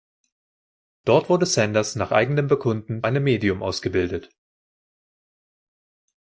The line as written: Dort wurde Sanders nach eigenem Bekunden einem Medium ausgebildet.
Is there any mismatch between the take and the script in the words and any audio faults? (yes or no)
no